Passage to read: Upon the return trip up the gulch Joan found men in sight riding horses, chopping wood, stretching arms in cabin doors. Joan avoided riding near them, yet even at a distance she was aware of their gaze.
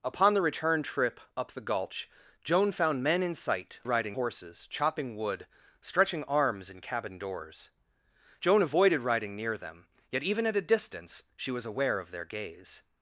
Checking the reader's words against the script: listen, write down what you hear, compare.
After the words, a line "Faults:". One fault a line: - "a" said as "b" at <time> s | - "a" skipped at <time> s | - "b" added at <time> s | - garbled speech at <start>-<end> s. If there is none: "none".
Upon the return trip up the gulch Joan found men in sight riding horses, chopping wood, stretching arms in cabin doors. Joan avoided riding near them, yet even at a distance she was aware of their gaze.
Faults:
none